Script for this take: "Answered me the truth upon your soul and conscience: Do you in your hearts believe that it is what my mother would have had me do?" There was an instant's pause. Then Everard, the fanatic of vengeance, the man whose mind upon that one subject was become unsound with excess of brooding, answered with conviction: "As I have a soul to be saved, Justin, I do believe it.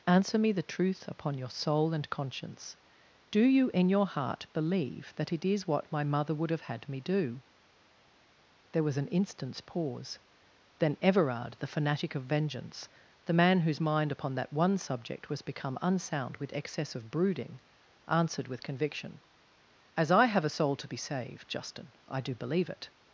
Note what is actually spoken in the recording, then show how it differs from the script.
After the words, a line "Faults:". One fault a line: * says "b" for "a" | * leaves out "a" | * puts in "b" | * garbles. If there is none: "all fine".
"Answer me the truth upon your soul and conscience: Do you in your heart believe that it is what my mother would have had me do?" There was an instant's pause. Then Everard, the fanatic of vengeance, the man whose mind upon that one subject was become unsound with excess of brooding, answered with conviction: "As I have a soul to be saved, Justin, I do believe it.
Faults:
* says "Answer" for "Answered"
* says "heart" for "hearts"